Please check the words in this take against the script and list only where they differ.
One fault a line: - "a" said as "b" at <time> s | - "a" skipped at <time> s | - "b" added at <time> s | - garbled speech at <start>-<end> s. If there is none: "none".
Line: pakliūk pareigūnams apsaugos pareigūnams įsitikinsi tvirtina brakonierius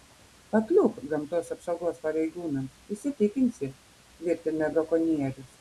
- "pareigūnams" said as "gamtos" at 1.1 s